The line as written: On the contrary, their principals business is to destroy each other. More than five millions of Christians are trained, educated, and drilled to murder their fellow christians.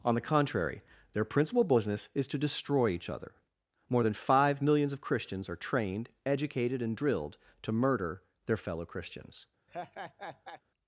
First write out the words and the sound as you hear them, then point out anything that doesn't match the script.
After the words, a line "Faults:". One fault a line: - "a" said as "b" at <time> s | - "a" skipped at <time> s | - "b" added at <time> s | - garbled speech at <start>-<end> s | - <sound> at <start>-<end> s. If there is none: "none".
On the contrary, their principal business is to destroy each other. More than five millions of Christians are trained, educated, and drilled to murder their fellow christians.
Faults:
- "principals" said as "principal" at 1.2 s
- laugh at 9.7-10.6 s